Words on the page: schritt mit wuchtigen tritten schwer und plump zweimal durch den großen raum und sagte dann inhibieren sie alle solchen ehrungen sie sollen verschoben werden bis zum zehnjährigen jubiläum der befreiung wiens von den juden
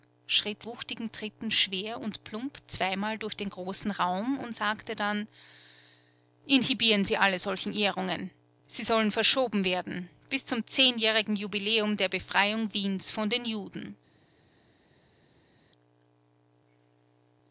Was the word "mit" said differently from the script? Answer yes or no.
yes